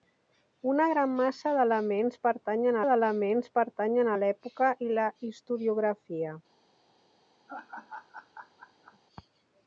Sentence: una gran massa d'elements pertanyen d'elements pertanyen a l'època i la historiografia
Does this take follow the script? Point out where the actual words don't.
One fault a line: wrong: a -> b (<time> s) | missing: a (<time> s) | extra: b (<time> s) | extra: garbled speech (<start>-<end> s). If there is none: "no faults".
no faults